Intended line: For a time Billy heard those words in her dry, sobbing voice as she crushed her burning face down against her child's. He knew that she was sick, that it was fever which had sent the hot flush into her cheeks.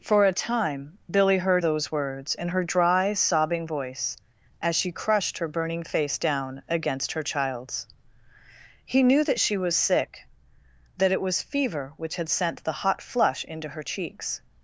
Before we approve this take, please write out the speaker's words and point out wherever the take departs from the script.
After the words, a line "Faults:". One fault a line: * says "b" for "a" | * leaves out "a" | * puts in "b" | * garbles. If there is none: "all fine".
For a time Billy heard those words in her dry, sobbing voice as she crushed her burning face down against her child's. He knew that she was sick, that it was fever which had sent the hot flush into her cheeks.
Faults:
all fine